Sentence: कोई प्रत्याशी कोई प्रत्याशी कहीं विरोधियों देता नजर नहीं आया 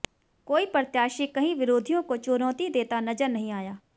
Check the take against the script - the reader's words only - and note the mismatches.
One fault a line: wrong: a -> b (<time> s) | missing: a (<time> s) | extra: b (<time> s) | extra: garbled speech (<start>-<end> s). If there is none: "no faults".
wrong: कोई प्रत्याशी कहीं विरोधियों -> कहीं विरोधियों को चुनौती (1.3 s)